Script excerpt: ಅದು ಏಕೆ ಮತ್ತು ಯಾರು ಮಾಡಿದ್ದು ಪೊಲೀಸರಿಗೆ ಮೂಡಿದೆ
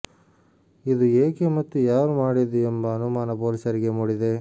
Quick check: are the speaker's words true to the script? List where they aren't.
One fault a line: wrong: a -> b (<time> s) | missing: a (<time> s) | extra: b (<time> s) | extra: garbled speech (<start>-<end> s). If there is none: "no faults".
wrong: ಅದು -> ಇದು (0.8 s)
extra: ಎಂಬ ಅನುಮಾನ (2.7 s)